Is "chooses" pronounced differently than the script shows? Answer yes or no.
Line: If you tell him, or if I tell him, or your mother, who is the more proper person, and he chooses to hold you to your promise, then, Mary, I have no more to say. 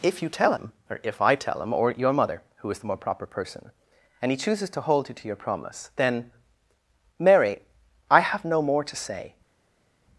no